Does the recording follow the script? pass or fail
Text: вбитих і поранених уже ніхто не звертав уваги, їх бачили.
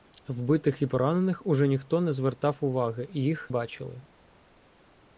pass